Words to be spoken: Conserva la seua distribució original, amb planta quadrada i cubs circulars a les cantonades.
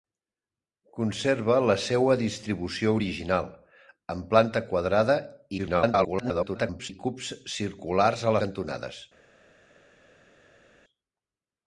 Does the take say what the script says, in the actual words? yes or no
no